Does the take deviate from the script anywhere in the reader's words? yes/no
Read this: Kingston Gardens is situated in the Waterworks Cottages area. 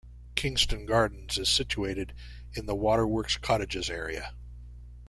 no